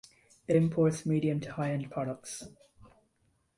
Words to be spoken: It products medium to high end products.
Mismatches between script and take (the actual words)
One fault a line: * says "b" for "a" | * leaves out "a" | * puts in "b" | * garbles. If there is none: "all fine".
* says "imports" for "products"